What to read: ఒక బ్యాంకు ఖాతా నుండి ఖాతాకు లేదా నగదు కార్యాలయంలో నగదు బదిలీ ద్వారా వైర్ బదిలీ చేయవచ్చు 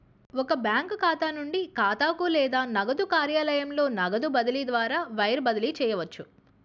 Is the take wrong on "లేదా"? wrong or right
right